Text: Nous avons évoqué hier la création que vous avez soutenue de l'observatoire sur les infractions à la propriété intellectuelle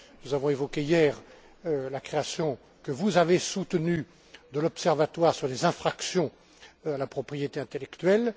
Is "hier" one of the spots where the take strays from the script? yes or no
no